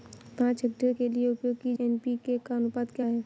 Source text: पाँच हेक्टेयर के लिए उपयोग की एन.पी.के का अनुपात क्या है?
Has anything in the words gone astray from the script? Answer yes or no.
no